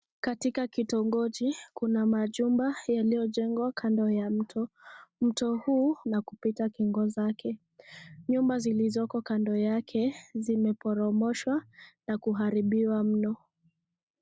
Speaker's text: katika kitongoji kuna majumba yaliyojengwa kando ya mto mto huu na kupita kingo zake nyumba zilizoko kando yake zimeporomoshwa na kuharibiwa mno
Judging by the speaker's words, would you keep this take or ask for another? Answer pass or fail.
pass